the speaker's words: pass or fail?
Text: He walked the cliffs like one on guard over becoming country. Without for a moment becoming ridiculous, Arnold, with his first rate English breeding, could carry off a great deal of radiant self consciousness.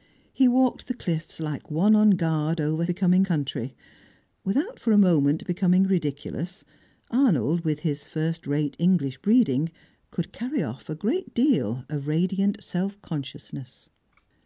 pass